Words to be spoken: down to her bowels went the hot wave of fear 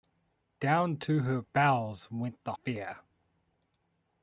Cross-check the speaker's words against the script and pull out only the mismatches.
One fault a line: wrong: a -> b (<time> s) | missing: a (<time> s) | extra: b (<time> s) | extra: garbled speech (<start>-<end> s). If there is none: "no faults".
missing: hot wave of (2.5 s)